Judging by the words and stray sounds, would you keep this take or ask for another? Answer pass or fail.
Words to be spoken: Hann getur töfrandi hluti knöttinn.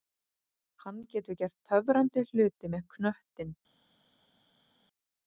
fail